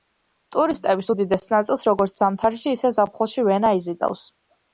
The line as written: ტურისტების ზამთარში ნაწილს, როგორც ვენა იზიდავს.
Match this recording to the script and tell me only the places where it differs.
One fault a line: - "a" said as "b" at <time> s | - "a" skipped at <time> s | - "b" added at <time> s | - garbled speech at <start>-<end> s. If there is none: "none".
- "ზამთარში" said as "უდიდეს" at 1.1 s
- "ზამთარში ისე ზაფხულში" added at 2.2 s